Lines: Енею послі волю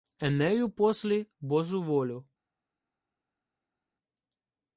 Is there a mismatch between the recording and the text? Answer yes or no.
yes